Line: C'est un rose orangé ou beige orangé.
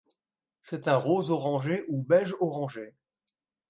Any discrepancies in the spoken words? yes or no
no